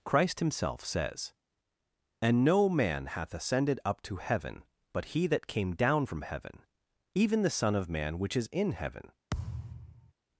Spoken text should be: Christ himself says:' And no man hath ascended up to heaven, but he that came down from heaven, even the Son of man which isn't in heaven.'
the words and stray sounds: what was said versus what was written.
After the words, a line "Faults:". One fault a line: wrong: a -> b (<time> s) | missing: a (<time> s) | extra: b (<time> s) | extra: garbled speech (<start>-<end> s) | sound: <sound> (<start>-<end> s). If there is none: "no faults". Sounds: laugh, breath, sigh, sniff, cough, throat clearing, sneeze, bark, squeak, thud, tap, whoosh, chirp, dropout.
Christ himself says:' And no man hath ascended up to heaven, but he that came down from heaven, even the Son of man which is in heaven.'
Faults:
wrong: isn't -> is (8.4 s)
sound: thud (9.3-10.1 s)